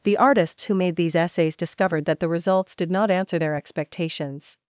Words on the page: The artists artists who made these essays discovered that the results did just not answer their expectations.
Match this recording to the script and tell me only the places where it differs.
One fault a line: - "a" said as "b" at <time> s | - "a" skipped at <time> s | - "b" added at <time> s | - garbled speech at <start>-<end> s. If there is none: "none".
- "artists" skipped at 0.6 s
- "just" skipped at 2.9 s